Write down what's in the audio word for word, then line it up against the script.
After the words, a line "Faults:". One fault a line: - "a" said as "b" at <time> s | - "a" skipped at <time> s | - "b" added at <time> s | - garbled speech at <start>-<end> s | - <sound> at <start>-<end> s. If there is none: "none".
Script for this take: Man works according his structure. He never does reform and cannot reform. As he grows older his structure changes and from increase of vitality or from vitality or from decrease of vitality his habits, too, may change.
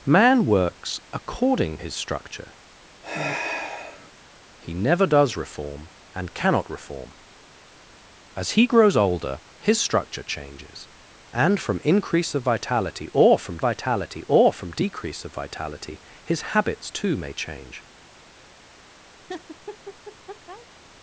Man works according his structure. He never does reform and cannot reform. As he grows older his structure changes and from increase of vitality or from vitality or from decrease of vitality his habits, too, may change.
Faults:
- sigh at 3.0-4.1 s
- laugh at 19.2-20.7 s